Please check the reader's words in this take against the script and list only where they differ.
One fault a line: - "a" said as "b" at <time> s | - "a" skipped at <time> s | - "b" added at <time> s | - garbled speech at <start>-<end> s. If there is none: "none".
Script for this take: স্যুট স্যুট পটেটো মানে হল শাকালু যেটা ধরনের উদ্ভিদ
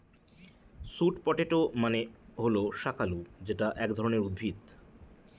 - "স্যুট" skipped at 1.1 s
- "এক" added at 3.8 s